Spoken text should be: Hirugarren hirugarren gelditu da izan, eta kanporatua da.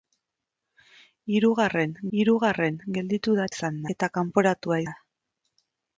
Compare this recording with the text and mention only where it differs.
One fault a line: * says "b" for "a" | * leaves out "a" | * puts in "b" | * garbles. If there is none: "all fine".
all fine